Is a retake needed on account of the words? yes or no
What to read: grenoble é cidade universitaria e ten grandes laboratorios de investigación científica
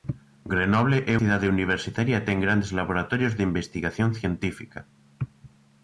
no